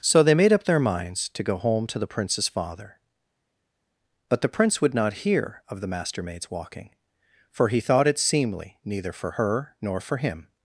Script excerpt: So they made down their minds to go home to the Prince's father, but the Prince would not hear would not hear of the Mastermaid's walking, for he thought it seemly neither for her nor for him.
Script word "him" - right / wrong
right